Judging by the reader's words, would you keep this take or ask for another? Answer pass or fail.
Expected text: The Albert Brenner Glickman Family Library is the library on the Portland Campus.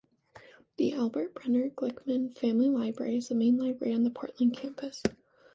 fail